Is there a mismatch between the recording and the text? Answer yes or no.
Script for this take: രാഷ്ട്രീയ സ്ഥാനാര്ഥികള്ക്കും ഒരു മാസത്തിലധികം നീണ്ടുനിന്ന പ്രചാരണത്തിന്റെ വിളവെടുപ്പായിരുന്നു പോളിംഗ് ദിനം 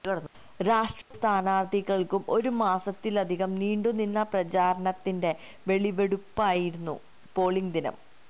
no